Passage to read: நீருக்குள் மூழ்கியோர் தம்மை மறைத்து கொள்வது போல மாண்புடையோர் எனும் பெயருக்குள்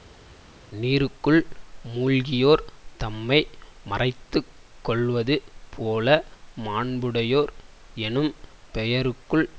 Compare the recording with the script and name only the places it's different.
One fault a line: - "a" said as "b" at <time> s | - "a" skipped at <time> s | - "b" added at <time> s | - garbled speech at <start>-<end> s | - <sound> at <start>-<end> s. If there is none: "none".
none